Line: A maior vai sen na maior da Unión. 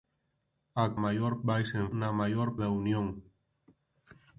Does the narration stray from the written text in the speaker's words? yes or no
no